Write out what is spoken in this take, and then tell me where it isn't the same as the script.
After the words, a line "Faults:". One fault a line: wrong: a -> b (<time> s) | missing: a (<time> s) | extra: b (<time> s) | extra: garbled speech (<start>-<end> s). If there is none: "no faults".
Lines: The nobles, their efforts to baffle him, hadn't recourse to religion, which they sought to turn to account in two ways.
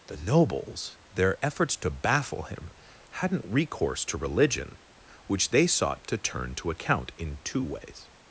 The nobles, their efforts to baffle him, hadn't recourse to religion, which they sought to turn to account in two ways.
Faults:
no faults